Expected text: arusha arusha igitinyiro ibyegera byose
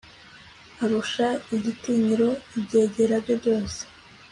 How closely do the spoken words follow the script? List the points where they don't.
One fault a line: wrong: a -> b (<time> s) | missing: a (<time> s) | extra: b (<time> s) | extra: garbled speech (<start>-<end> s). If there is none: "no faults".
missing: arusha (1.3 s)
extra: bye (3.2 s)